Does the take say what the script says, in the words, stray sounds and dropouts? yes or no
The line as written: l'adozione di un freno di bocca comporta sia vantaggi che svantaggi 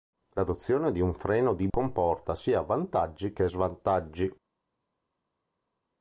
no